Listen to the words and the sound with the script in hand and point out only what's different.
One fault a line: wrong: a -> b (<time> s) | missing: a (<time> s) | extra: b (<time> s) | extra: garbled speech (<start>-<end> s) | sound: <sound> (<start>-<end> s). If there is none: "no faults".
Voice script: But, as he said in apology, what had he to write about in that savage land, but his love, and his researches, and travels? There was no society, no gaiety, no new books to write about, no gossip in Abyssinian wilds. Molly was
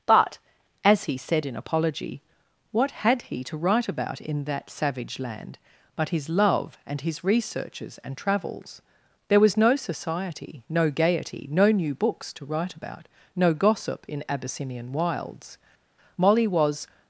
no faults